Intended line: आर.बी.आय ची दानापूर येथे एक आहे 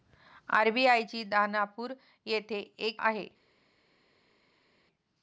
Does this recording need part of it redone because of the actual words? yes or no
no